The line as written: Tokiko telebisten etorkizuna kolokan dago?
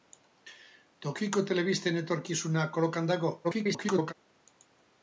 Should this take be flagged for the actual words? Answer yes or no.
yes